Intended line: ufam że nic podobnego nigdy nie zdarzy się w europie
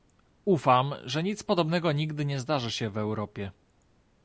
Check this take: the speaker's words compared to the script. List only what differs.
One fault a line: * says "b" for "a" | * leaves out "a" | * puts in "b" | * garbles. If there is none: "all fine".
all fine